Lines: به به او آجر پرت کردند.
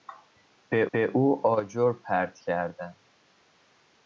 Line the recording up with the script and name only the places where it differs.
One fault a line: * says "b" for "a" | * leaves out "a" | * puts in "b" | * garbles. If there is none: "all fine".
all fine